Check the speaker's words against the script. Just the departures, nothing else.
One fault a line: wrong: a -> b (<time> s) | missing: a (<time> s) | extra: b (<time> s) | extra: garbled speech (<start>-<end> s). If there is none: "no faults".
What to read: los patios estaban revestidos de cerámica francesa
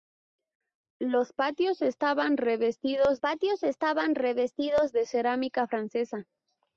extra: patios estaban revestidos (3.2 s)